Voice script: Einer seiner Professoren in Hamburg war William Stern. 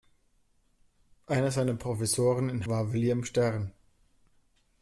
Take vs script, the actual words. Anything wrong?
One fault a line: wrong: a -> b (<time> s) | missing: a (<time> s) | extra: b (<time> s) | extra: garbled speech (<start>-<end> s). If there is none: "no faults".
missing: Hamburg (2.6 s)